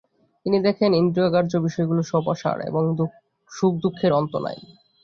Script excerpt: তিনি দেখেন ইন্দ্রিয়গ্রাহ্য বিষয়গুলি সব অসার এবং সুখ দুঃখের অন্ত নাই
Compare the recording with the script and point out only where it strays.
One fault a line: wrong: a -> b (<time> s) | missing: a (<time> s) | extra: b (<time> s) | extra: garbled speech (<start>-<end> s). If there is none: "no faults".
no faults